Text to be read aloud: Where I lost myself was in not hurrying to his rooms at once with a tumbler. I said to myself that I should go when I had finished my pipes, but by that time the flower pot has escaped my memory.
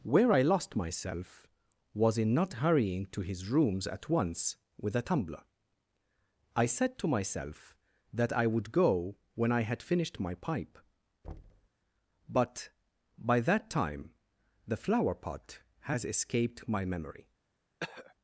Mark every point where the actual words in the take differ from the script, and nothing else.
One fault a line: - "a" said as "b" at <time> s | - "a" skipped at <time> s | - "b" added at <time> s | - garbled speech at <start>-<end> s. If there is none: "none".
- "should" said as "would" at 8.5 s
- "pipes" said as "pipe" at 10.3 s